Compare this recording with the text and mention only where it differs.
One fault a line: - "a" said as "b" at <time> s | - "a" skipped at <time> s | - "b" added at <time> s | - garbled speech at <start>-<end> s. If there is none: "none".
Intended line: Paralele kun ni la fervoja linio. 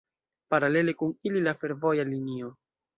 - "ni" said as "ili" at 1.2 s